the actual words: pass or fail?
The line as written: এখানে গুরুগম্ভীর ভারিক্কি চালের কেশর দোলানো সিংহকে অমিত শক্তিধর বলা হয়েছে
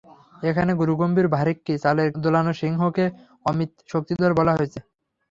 fail